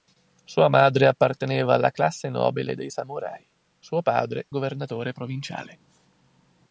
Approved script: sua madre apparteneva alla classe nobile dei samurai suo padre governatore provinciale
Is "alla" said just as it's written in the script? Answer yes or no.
yes